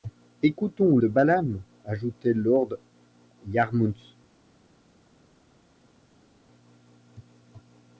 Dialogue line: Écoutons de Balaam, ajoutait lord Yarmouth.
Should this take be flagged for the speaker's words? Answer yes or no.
no